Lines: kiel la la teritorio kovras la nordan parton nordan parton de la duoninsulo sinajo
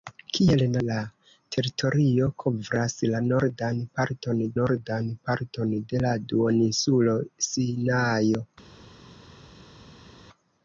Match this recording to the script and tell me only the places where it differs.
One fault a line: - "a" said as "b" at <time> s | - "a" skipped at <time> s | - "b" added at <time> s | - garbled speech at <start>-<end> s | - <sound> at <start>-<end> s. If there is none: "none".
none